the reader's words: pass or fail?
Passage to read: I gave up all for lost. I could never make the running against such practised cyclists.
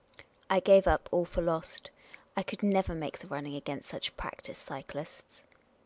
pass